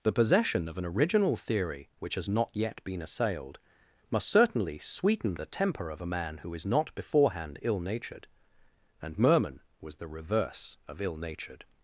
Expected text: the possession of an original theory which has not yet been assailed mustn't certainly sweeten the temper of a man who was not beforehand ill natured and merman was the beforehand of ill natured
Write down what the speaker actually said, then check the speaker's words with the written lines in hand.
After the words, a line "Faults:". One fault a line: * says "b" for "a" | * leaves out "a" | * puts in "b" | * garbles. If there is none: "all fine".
the possession of an original theory which has not yet been assailed must certainly sweeten the temper of a man who is not beforehand ill natured and merman was the reverse of ill natured
Faults:
* says "must" for "mustn't"
* says "is" for "was"
* says "reverse" for "beforehand"